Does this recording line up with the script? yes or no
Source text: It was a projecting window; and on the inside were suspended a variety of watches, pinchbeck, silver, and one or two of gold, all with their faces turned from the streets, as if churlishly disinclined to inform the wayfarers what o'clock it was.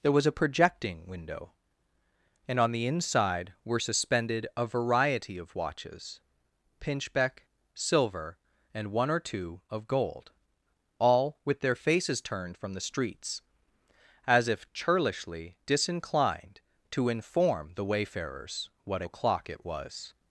no